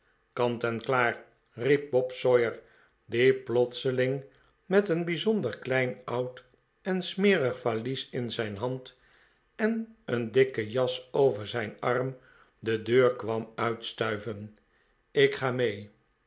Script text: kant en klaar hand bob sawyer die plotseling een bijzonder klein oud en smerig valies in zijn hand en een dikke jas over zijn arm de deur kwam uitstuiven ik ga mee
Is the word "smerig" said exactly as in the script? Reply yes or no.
yes